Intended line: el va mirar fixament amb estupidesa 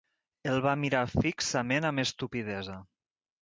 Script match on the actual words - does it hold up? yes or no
yes